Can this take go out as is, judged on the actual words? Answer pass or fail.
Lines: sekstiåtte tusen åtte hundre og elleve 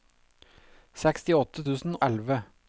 fail